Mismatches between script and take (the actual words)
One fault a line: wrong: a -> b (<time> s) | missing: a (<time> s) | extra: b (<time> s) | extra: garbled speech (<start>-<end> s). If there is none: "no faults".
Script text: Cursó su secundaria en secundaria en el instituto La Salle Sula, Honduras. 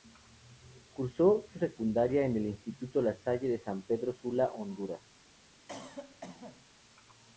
missing: secundaria en (2.3 s)
extra: de San Pedro (3.5 s)